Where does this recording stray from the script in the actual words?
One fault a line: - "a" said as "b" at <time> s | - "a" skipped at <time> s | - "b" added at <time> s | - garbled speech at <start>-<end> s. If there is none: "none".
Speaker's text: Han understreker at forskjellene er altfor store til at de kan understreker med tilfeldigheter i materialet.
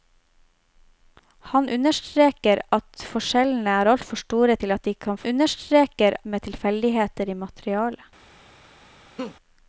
none